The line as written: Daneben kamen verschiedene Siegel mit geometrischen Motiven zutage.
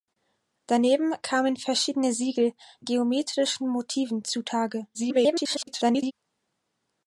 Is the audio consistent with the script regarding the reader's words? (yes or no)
no